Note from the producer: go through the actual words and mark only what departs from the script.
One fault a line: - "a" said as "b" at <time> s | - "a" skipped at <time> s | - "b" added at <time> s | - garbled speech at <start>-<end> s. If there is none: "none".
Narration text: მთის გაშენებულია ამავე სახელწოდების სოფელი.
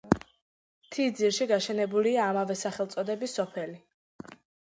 - "ძირში" added at 1.2 s